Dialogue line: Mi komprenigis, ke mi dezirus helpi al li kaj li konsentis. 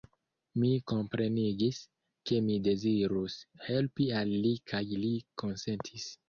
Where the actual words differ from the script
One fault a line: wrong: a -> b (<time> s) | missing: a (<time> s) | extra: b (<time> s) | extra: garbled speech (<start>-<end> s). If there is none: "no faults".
no faults